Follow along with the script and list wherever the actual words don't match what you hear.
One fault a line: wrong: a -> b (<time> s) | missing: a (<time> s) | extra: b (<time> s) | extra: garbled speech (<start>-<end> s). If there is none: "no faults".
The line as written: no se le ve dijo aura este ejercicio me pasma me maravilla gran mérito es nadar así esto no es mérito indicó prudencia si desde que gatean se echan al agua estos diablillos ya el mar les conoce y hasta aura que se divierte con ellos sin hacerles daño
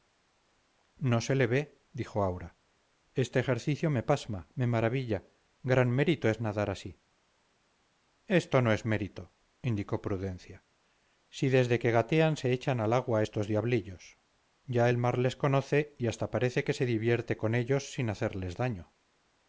wrong: aura -> parece (16.3 s)